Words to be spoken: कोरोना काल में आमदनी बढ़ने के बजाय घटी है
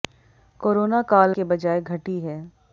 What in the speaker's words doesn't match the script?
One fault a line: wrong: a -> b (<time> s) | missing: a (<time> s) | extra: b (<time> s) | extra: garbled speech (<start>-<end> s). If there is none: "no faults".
missing: में आमदनी बढ़ने (1.4 s)